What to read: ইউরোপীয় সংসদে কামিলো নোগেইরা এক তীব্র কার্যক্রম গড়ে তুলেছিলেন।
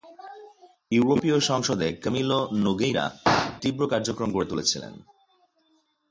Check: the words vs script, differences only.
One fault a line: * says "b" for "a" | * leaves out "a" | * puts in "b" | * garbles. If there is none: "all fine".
* leaves out "এক"